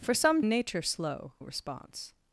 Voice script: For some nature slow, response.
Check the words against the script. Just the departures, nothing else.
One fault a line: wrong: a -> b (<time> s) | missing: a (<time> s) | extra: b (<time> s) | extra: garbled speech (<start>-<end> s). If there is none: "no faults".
no faults